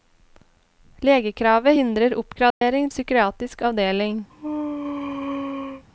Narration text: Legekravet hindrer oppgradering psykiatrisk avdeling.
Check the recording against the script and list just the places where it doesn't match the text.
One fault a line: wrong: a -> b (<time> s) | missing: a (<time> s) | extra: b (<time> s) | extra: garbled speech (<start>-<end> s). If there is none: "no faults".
no faults